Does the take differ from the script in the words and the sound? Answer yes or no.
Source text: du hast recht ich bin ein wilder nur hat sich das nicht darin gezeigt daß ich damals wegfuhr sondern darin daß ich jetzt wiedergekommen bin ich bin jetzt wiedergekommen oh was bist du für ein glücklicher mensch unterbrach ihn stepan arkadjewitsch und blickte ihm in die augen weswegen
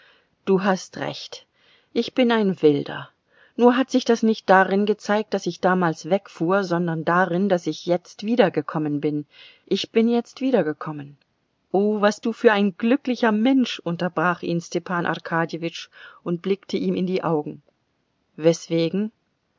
yes